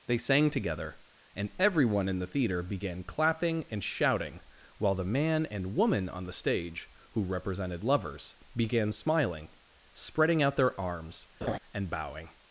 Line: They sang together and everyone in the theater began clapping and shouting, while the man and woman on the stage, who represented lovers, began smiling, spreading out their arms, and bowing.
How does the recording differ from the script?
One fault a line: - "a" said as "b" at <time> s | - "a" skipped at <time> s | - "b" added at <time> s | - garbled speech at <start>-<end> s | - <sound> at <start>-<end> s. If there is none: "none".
- laugh at 11.4-11.6 s